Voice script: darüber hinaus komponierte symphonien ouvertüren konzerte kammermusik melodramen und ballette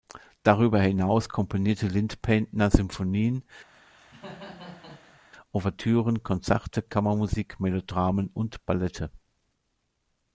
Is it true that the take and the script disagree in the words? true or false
true